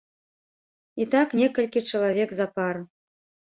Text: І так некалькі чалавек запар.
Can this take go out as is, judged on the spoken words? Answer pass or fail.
pass